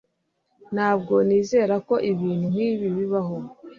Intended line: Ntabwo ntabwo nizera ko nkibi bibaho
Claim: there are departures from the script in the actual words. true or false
true